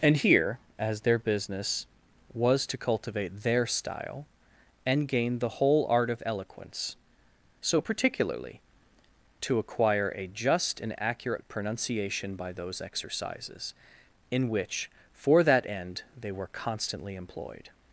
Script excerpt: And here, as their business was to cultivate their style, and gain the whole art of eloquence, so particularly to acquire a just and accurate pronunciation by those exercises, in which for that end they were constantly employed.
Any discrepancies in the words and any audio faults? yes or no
no